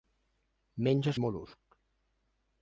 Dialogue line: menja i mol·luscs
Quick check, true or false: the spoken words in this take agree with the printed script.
true